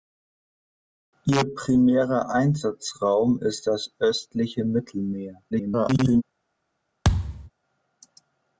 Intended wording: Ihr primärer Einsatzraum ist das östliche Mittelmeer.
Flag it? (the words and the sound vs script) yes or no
yes